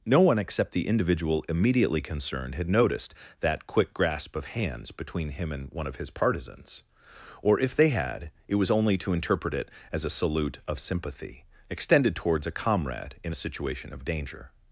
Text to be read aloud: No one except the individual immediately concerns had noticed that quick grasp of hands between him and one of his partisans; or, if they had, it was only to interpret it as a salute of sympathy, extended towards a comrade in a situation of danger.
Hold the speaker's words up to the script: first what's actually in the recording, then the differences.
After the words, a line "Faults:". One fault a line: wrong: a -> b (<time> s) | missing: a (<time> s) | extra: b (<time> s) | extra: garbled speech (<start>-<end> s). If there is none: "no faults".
No one except the individual immediately concerned had noticed that quick grasp of hands between him and one of his partisans; or, if they had, it was only to interpret it as a salute of sympathy, extended towards a comrade in a situation of danger.
Faults:
wrong: concerns -> concerned (2.0 s)